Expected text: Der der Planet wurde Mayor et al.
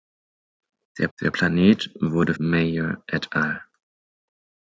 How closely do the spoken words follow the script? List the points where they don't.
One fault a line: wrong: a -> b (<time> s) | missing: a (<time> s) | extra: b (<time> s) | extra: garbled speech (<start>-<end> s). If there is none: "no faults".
no faults